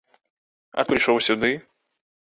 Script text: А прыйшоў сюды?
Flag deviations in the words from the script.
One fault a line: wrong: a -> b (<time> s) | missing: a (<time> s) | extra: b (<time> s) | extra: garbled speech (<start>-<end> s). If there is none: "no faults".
no faults